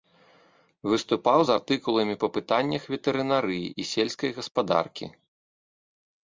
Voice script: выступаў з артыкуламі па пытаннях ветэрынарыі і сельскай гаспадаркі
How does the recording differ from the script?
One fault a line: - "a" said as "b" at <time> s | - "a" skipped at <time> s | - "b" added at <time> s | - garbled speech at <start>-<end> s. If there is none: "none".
none